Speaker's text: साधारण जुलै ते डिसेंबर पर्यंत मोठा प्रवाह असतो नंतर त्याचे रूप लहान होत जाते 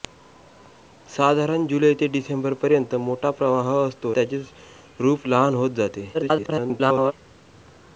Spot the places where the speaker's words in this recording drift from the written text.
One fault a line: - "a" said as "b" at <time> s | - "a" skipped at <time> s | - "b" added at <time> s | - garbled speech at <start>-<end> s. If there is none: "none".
- "नंतर" skipped at 4.1 s
- garbled speech at 6.1-7.1 s